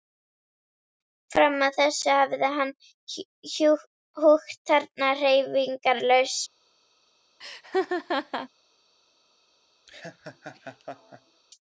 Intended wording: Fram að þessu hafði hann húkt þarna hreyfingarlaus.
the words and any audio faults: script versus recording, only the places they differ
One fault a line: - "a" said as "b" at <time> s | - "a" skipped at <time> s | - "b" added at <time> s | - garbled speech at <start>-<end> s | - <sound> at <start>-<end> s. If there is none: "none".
- laugh at 7.4-8.5 s
- laugh at 9.9-11.4 s